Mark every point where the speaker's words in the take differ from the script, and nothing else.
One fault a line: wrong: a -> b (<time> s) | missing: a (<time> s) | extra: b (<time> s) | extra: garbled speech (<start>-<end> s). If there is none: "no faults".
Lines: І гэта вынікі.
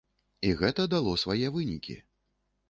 extra: дало свае (0.9 s)